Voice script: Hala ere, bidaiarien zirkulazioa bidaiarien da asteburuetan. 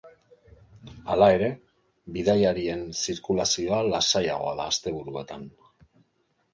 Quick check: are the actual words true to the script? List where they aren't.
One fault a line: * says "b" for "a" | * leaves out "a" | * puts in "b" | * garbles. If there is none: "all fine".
* says "lasaiagoa" for "bidaiarien"